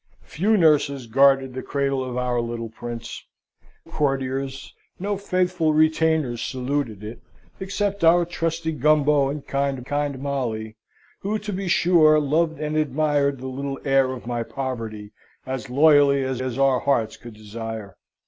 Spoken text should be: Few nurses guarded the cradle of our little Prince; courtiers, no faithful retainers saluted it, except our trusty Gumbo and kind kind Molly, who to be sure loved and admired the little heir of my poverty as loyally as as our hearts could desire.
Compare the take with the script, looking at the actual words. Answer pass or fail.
pass